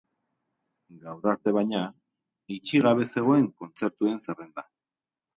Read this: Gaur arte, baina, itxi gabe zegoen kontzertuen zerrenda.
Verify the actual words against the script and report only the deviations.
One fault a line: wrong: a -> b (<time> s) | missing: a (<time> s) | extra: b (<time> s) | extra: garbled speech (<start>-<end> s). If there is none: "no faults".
no faults